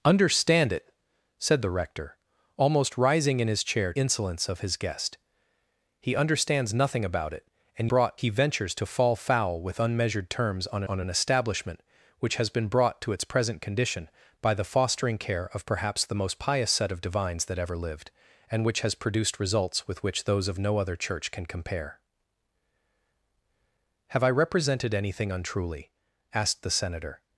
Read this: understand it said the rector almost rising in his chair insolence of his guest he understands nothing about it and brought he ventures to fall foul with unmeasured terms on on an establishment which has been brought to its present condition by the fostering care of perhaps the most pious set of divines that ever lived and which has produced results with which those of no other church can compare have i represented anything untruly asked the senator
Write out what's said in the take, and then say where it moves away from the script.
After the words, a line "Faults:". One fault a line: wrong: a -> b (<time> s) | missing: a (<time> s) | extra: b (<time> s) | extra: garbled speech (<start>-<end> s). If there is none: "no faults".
understand it said the rector almost rising in his chair insolence of his guest he understands nothing about it and brought he ventures to fall foul with unmeasured terms on on an establishment which has been brought to its present condition by the fostering care of perhaps the most pious set of divines that ever lived and which has produced results with which those of no other church can compare have i represented anything untruly asked the senator
Faults:
no faults